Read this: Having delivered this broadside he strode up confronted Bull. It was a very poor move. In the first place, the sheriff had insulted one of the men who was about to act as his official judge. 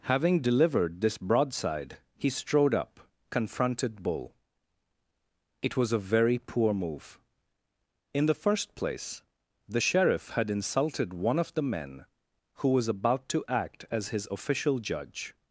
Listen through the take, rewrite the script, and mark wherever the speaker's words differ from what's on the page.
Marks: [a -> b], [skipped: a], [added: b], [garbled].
Having delivered this broadside he strode up confronted Bull. It was a very poor move. In the first place, the sheriff had insulted one of the men who was about to act as his official judge.